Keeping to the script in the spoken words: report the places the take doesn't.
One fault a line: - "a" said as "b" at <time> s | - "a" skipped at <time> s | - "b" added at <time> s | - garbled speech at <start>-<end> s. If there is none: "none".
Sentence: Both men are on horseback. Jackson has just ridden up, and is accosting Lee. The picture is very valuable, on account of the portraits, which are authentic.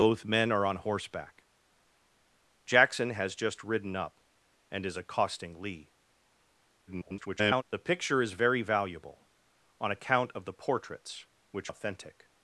- garbled speech at 6.9-7.6 s
- "are" skipped at 11.7 s